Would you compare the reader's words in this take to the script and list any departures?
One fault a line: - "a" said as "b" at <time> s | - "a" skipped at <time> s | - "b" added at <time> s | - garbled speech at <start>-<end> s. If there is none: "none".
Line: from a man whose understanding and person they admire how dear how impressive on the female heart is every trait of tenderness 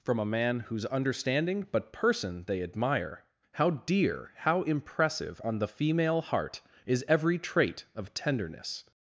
- "and" said as "but" at 1.7 s